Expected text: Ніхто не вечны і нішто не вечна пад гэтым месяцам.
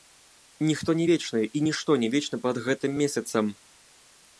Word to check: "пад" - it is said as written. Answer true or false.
true